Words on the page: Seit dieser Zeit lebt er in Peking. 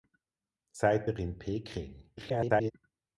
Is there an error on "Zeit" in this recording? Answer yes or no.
yes